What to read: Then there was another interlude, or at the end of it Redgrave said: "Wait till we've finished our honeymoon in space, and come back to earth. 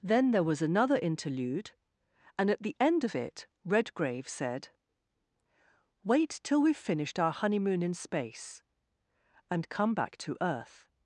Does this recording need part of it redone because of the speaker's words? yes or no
yes